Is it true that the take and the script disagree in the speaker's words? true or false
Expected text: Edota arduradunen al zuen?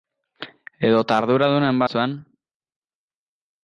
false